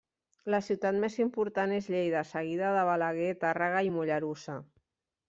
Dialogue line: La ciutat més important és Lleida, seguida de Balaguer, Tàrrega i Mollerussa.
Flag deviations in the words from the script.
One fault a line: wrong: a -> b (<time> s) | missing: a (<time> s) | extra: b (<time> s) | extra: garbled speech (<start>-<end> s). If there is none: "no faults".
no faults